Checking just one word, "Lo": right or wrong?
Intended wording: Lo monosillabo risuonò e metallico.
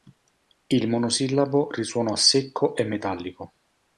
wrong